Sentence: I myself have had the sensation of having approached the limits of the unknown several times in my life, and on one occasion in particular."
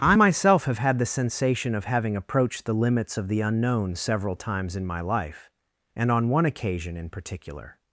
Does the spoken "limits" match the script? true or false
true